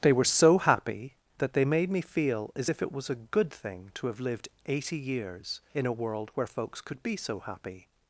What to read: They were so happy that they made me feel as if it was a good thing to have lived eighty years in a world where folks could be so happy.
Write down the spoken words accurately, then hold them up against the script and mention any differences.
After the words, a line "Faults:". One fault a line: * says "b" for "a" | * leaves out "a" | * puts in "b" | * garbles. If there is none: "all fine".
They were so happy that they made me feel as if it was a good thing to have lived eighty years in a world where folks could be so happy.
Faults:
all fine